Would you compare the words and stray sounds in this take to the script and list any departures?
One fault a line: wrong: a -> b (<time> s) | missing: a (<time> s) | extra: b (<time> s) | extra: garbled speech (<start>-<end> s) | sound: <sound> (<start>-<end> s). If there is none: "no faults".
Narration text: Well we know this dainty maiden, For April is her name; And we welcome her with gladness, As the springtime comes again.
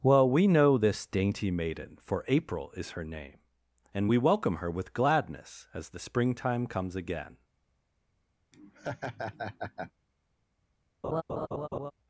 sound: laugh (8.5-9.9 s)
sound: laugh (11.0-11.9 s)